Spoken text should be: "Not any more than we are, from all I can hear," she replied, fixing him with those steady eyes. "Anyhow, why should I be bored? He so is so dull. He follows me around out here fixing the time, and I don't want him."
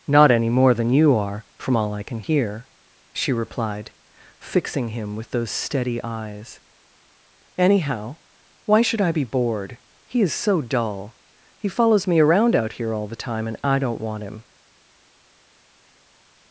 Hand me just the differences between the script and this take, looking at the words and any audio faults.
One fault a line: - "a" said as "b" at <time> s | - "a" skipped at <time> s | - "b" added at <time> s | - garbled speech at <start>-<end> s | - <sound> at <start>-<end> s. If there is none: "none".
- "we" said as "you" at 0.9 s
- "so" skipped at 10.2 s
- "fixing" said as "all" at 12.9 s